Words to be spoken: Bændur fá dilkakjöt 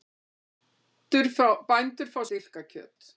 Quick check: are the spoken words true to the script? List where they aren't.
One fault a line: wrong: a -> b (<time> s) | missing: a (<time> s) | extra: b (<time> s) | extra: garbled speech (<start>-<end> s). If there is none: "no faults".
no faults